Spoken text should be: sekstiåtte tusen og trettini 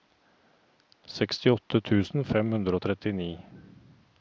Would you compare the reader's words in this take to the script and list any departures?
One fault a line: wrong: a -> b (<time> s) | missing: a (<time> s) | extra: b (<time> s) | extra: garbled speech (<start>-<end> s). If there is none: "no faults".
extra: fem hundre (2.3 s)